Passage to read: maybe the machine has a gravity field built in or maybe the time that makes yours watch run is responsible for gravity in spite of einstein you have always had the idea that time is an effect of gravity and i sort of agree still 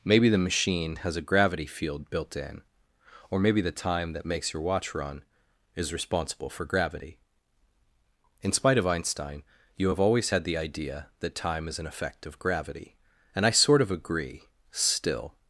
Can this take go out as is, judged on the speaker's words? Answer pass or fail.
fail